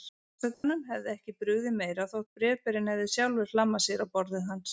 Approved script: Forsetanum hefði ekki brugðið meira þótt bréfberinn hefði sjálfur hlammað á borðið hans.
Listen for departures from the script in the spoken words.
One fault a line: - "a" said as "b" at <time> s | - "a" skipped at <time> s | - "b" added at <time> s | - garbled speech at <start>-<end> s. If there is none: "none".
- "sér" added at 3.9 s